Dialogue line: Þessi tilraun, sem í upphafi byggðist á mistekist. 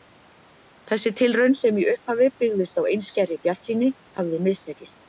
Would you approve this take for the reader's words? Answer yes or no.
no